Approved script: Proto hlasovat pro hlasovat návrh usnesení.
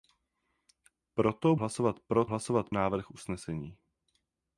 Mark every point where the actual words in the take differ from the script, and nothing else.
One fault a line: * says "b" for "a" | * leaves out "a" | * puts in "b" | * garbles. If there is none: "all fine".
all fine